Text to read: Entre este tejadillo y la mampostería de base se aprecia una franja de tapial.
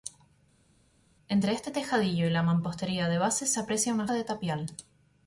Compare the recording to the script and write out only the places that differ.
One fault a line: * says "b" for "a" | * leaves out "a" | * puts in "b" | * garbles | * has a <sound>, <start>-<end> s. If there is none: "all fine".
* leaves out "franja"